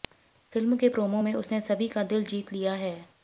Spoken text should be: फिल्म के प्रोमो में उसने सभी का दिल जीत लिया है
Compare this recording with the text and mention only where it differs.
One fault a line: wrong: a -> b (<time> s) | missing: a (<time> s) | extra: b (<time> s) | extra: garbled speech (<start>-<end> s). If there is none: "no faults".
no faults